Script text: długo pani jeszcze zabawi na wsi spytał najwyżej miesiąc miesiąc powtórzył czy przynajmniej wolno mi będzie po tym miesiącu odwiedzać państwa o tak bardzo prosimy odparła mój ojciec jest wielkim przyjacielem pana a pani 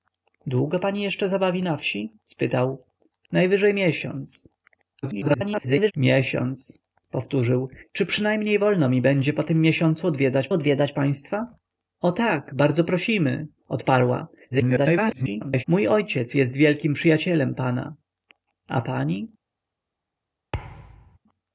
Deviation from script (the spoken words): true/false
true